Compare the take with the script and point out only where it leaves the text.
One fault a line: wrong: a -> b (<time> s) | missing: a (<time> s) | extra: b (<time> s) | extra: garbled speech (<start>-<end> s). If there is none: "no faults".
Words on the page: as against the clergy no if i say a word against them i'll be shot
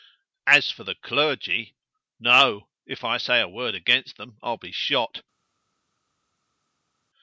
wrong: against -> for (0.7 s)